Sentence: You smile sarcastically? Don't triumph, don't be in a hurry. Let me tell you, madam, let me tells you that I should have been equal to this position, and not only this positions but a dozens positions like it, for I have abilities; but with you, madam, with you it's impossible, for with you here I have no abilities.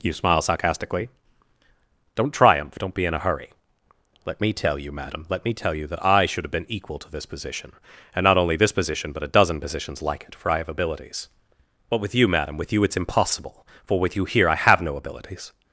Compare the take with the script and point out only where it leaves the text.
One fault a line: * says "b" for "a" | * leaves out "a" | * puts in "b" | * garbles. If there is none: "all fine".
* says "tell" for "tells"
* says "position" for "positions"
* says "dozen" for "dozens"